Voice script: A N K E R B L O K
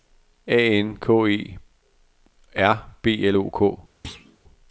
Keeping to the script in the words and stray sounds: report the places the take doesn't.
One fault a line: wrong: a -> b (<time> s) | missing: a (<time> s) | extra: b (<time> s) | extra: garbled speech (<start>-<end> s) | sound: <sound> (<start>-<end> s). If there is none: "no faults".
sound: thud (4.0-4.4 s)